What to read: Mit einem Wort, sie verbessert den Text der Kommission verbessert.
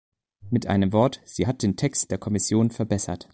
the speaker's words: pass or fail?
fail